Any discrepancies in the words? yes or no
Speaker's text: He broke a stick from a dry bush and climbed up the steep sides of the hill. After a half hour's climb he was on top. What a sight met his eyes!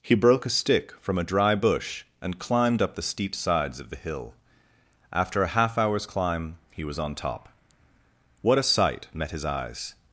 no